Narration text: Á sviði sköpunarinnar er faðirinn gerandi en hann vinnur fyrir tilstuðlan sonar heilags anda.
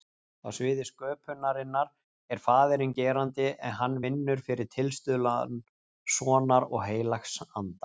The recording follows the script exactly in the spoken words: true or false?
false